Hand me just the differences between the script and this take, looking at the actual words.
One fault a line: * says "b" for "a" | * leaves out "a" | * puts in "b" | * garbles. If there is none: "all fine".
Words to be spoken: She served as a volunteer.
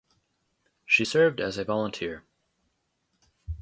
all fine